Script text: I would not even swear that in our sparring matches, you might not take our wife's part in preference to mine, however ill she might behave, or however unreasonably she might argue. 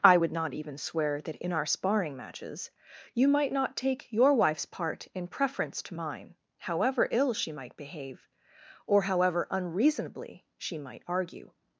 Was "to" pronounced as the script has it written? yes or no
yes